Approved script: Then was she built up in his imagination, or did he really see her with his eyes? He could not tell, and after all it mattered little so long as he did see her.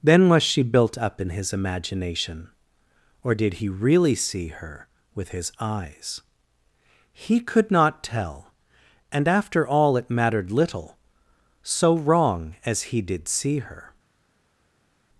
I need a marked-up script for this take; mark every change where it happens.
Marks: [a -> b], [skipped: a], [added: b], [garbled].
Then was she built up in his imagination, or did he really see her with his eyes? He could not tell, and after all it mattered little so [long -> wrong] as he did see her.